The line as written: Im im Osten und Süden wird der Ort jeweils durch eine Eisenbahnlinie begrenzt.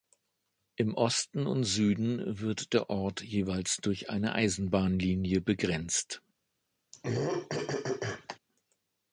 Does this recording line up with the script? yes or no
no